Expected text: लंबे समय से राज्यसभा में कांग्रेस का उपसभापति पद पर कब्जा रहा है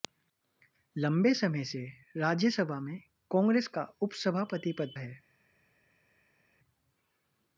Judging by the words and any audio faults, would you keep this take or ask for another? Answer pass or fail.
fail